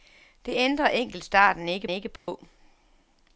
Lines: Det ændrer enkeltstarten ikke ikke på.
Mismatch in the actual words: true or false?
false